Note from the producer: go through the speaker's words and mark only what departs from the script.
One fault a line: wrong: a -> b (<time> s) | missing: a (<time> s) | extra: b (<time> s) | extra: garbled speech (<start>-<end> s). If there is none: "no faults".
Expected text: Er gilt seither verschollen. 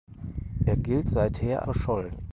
no faults